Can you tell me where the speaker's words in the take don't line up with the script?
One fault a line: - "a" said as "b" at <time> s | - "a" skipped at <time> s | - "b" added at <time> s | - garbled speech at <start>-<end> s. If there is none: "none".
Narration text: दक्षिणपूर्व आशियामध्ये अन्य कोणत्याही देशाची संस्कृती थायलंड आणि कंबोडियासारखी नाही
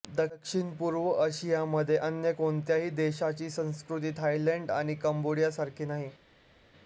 none